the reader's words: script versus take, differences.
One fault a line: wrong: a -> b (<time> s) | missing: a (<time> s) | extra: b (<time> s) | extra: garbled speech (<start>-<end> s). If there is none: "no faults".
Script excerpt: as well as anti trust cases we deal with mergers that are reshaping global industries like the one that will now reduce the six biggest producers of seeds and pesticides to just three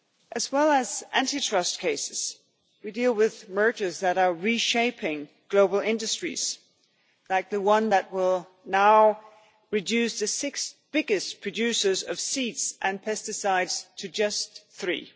no faults